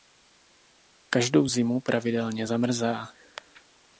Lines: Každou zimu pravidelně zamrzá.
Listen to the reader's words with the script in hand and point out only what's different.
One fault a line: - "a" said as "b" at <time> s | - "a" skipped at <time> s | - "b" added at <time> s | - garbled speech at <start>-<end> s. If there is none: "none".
none